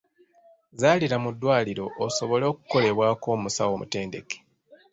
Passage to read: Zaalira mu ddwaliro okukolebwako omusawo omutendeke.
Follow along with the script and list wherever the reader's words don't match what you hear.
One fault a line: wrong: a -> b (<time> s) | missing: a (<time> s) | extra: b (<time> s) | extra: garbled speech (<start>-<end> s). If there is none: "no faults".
extra: osobole (2.1 s)